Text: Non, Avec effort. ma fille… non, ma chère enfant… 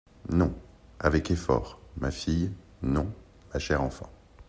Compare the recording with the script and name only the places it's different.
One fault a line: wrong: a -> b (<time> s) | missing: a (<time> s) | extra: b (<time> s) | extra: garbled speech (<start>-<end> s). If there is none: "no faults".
no faults